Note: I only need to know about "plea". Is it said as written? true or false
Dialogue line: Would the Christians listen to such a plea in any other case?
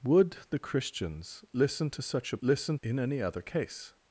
false